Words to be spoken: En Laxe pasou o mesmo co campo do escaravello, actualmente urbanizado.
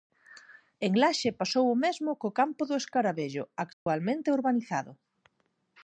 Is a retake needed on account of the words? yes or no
no